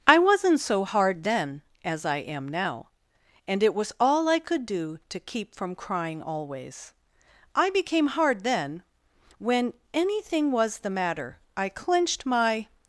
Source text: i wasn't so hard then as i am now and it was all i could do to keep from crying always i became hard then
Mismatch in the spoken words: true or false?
true